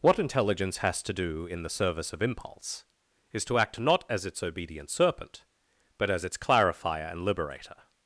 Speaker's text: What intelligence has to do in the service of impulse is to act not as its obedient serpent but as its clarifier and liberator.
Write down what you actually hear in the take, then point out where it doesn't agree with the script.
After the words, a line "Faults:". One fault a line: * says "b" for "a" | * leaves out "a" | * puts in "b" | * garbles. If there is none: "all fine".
What intelligence has to do in the service of impulse is to act not as its obedient serpent but as its clarifier and liberator.
Faults:
all fine